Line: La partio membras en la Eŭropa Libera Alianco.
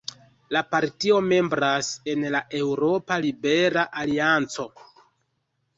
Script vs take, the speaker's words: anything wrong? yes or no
no